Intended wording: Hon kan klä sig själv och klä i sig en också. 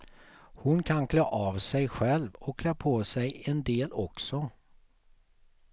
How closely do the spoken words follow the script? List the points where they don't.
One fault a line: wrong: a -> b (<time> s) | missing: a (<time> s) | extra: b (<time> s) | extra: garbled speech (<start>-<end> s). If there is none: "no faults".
extra: av (1.2 s)
wrong: i -> på (2.7 s)
extra: del (3.6 s)